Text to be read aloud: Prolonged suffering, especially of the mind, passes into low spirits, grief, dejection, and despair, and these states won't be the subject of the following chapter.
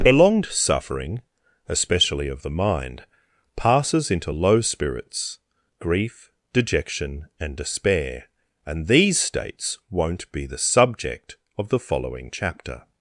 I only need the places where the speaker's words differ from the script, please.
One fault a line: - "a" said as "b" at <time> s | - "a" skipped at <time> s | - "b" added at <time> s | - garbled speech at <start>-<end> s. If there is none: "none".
none